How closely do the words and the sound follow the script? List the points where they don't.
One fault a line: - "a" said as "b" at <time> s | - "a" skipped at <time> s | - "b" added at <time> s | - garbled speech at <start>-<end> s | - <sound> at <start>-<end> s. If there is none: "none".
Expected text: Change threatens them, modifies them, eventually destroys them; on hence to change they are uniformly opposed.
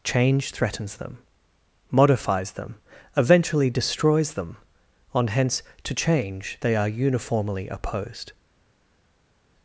none